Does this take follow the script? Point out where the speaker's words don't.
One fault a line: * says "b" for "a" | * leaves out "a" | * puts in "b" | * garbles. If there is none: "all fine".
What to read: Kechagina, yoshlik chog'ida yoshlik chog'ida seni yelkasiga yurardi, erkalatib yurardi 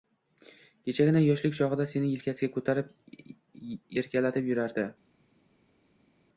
* leaves out "yoshlik chog'ida"
* says "ko'tarib" for "yurardi"